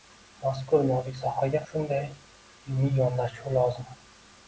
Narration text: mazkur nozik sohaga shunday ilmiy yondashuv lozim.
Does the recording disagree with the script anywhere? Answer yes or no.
no